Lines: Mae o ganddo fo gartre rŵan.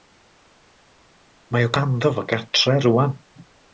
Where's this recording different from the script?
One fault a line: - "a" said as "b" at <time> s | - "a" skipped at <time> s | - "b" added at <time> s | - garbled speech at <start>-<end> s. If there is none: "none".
none